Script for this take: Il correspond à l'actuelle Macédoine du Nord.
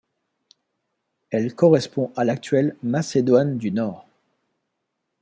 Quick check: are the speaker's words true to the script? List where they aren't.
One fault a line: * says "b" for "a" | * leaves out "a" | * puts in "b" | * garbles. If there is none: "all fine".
* says "Elle" for "Il"